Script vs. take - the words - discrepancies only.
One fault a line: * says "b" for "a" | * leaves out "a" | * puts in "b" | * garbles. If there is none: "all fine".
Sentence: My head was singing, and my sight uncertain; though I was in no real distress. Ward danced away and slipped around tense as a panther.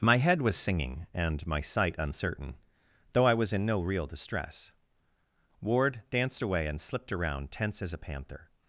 all fine